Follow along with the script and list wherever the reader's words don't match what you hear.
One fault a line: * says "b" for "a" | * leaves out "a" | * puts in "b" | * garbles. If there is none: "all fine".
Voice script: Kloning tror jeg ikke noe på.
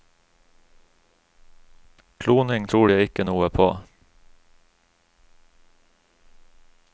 all fine